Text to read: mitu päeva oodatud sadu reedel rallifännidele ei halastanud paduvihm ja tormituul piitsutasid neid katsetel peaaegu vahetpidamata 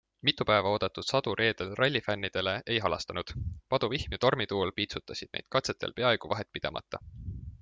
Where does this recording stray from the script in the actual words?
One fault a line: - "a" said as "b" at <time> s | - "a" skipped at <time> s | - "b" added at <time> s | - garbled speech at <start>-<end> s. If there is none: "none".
none